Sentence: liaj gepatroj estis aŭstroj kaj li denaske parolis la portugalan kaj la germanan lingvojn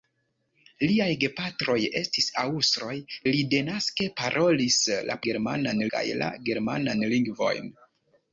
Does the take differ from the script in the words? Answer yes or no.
yes